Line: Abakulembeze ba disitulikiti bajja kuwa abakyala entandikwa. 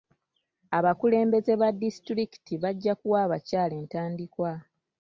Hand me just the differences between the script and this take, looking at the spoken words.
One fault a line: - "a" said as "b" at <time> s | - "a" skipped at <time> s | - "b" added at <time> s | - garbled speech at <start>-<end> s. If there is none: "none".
none